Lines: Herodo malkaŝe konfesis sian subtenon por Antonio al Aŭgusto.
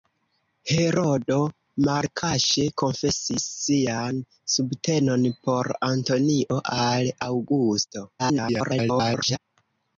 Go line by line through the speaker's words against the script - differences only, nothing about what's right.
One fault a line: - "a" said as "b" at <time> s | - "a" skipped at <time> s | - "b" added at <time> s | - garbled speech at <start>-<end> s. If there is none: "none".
- garbled speech at 8.2-9.4 s